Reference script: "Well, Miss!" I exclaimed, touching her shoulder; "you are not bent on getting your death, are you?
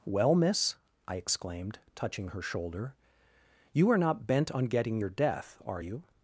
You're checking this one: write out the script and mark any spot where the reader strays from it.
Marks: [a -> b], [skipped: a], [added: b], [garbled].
"Well, Miss!" I exclaimed, touching her shoulder; "you are not bent on getting your death, are you?